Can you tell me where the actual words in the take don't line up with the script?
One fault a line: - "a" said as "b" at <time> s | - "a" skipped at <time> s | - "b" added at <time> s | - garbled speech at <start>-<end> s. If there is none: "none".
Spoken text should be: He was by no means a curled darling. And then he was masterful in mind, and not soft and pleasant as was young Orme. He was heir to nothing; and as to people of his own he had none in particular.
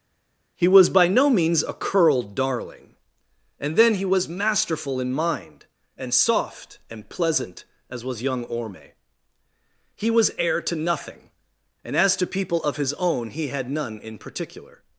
- "not" skipped at 6.1 s